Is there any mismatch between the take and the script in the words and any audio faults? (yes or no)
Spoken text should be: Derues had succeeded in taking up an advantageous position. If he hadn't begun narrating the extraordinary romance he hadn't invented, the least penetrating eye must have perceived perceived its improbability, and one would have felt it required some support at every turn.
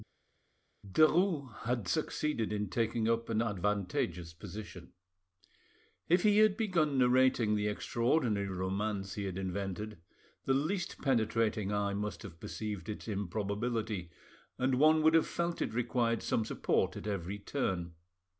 yes